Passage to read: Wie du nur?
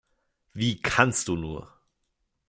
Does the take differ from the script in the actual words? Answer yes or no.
yes